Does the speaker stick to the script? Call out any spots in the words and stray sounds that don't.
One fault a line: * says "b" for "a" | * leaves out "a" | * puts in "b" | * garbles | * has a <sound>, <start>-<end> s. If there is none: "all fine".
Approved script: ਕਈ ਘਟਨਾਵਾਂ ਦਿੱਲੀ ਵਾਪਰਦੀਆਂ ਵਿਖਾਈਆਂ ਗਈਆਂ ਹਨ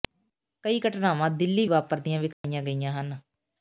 * has a dropout, 2.3-2.4 s